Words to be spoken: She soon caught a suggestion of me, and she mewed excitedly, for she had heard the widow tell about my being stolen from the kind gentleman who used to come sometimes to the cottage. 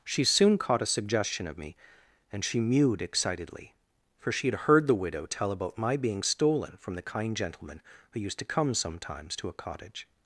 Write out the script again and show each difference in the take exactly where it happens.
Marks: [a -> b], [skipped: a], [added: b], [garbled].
She soon caught a suggestion of me, and she mewed excitedly, for she had heard the widow tell about my being stolen from the kind gentleman who used to come sometimes to [the -> a] cottage.